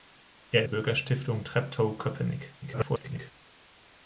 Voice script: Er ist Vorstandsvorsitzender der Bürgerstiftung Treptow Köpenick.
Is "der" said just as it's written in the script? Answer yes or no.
no